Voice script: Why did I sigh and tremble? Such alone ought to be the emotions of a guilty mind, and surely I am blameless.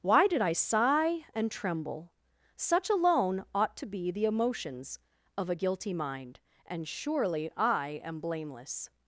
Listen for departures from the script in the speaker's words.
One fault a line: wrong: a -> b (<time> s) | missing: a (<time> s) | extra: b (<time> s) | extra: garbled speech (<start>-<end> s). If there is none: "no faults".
no faults